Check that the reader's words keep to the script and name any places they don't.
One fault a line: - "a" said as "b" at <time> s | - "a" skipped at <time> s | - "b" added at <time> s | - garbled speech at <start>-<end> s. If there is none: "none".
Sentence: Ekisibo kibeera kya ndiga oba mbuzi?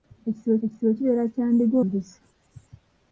- "ekisibo" added at 0.6 s
- "oba" skipped at 1.8 s